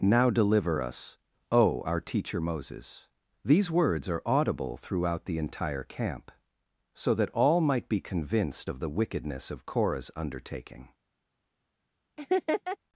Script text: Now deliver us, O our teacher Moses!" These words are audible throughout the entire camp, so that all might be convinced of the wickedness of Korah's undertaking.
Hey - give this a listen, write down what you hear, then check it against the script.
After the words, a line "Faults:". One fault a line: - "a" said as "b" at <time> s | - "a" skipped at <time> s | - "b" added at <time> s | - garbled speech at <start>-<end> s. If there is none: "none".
Now deliver us, O our teacher Moses!" These words are audible throughout the entire camp, so that all might be convinced of the wickedness of Korah's undertaking.
Faults:
none